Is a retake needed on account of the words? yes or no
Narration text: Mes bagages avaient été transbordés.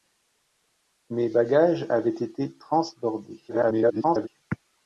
yes